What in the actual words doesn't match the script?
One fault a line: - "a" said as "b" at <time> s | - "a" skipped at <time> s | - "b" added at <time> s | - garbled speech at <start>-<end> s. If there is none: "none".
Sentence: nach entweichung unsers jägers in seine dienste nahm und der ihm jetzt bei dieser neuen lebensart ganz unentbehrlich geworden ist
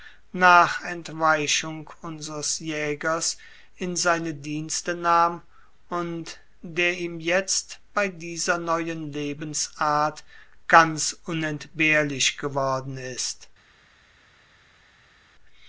none